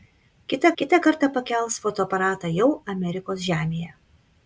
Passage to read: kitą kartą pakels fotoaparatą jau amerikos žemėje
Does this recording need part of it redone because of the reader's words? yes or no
yes